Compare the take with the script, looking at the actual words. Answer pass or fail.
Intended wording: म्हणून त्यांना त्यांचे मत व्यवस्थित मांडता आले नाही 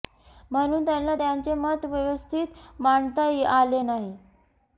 pass